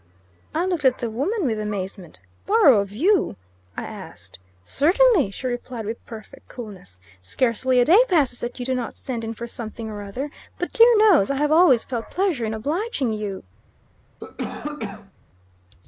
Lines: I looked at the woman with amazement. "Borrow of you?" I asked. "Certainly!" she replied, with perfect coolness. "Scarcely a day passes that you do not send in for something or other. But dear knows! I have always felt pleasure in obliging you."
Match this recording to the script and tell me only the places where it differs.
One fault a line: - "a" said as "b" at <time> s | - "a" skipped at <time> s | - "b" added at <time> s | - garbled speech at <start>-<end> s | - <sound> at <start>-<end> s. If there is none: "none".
- cough at 14.2-15.1 s